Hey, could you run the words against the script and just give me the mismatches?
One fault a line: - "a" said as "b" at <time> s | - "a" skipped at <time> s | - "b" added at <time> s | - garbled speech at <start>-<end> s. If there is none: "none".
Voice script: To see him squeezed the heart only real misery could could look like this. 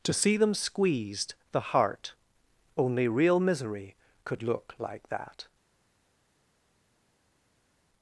- "him" said as "them" at 0.3 s
- "could" skipped at 4.4 s
- "this" said as "that" at 5.1 s